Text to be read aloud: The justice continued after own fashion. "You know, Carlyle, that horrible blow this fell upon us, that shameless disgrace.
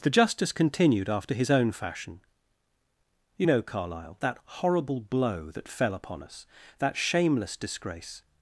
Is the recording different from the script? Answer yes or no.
yes